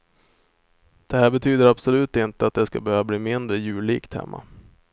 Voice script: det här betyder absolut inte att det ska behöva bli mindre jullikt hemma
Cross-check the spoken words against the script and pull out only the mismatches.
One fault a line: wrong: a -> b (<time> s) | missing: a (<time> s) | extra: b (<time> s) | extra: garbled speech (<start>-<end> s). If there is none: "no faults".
no faults